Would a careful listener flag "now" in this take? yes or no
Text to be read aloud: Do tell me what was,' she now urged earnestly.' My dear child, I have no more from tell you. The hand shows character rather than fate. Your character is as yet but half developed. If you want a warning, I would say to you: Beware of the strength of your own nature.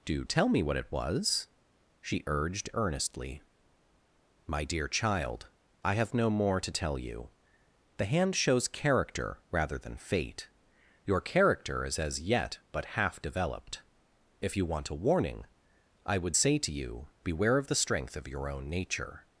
yes